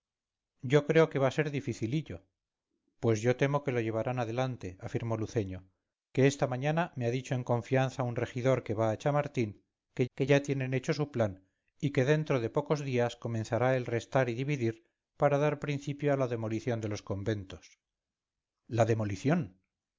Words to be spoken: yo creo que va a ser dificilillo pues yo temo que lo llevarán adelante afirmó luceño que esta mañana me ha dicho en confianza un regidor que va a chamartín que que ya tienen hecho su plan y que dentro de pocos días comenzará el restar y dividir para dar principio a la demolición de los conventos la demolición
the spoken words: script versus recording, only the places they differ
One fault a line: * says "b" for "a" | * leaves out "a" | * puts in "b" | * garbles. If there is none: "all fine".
all fine